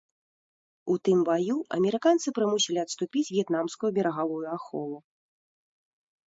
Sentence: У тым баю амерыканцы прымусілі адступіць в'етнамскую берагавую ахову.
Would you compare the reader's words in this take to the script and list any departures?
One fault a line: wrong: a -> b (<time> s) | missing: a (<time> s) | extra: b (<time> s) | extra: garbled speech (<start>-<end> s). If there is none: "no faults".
no faults